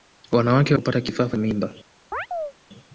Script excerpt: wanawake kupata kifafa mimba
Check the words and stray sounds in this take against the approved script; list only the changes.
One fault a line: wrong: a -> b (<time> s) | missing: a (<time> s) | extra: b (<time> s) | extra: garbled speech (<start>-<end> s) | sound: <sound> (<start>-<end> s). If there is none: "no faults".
sound: chirp (2.1-2.5 s)